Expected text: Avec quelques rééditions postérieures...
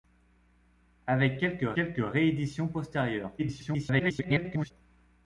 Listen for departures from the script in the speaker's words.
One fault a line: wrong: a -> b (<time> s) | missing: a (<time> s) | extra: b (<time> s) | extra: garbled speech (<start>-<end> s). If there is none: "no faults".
extra: quelques (1.7 s)
extra: garbled speech (3.4-4.7 s)